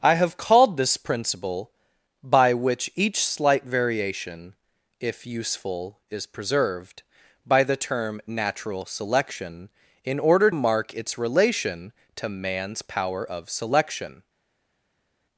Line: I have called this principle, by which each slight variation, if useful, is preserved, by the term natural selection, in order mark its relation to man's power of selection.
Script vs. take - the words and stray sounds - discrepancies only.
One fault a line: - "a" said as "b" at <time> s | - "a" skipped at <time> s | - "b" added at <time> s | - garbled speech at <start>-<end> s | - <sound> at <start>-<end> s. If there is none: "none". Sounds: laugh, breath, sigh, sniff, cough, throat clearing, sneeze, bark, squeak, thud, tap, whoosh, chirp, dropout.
none